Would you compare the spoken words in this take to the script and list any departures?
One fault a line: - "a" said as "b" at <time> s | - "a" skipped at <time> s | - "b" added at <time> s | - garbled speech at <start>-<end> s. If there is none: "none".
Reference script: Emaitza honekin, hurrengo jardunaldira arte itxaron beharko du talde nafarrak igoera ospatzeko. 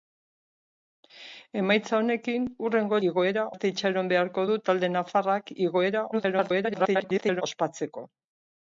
- "jardunaldira" said as "igoera" at 3.1 s
- garbled speech at 6.1-7.4 s